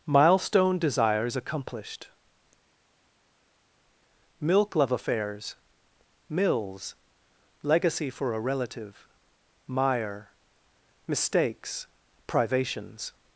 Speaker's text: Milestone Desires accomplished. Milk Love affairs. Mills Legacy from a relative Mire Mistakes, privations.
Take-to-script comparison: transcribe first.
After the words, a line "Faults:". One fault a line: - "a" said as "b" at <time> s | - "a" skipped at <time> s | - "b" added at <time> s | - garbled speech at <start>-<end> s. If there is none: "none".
Milestone Desires accomplished. Milk Love affairs. Mills Legacy for a relative Mire Mistakes, privations.
Faults:
- "from" said as "for" at 8.1 s